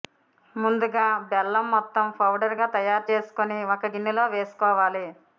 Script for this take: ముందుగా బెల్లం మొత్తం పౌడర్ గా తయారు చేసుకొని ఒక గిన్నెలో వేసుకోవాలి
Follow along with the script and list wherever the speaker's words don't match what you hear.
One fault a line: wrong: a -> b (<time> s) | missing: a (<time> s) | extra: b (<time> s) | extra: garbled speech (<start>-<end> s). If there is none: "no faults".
no faults